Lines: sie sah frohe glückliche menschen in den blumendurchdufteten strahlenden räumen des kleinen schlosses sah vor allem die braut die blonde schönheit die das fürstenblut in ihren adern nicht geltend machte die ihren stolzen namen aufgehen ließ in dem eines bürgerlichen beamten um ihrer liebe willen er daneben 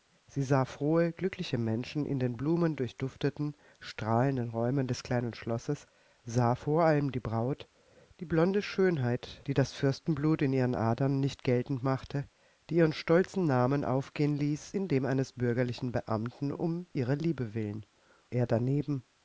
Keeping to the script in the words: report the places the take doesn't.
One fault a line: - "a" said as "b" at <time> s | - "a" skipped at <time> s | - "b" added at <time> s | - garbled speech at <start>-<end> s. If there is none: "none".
none